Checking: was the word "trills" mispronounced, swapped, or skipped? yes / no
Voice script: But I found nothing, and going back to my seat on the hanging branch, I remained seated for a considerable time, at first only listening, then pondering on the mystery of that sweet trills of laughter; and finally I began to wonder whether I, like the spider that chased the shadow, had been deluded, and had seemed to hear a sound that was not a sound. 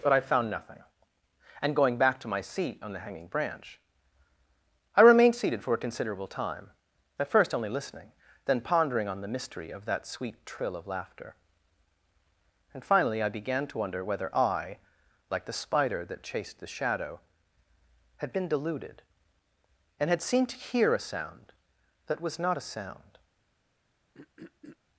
yes